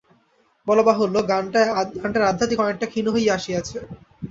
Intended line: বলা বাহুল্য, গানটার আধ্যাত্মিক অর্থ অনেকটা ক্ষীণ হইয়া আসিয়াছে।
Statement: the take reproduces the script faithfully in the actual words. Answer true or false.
false